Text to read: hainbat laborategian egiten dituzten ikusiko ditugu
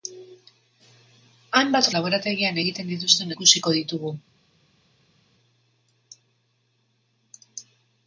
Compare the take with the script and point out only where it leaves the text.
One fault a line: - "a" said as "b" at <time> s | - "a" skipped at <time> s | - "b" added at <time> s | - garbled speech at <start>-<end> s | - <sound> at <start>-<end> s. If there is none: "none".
none